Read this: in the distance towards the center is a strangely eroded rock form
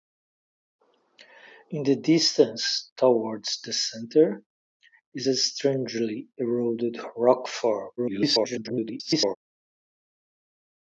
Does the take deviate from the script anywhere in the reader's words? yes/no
yes